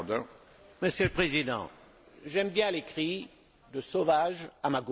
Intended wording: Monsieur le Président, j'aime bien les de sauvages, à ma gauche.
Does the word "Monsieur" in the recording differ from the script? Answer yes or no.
no